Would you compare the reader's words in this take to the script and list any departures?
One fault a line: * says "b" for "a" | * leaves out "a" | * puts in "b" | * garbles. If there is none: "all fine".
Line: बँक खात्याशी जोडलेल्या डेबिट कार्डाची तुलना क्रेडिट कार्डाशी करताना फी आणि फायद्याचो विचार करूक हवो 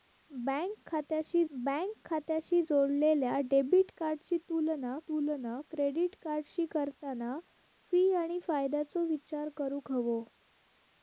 * puts in "बँक खात्याशी"
* puts in "तुलना"